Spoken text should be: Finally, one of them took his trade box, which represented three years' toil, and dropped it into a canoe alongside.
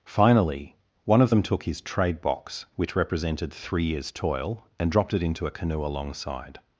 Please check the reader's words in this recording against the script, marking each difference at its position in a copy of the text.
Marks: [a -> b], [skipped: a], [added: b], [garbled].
Finally, one of them took his trade box, which represented three years' toil, and dropped it into a canoe alongside.